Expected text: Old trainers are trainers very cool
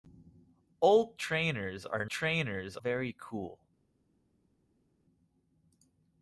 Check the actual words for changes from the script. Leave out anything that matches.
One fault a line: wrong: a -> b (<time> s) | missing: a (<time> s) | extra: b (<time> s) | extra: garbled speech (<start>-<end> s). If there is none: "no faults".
no faults